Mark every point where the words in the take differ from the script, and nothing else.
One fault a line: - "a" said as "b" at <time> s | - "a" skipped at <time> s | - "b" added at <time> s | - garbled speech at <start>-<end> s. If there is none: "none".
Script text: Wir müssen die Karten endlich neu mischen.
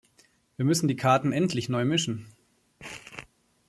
none